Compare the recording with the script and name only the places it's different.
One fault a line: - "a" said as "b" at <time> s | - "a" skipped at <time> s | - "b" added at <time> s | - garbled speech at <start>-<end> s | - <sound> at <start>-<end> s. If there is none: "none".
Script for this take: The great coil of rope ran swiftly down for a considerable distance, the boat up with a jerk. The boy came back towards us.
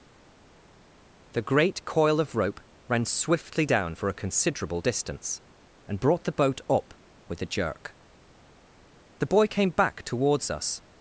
- "and brought" added at 5.9 s